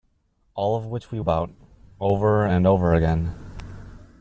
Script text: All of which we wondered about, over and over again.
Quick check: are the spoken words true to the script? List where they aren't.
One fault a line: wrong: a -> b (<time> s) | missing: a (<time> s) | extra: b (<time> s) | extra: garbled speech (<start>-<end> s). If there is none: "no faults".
missing: wondered (1.2 s)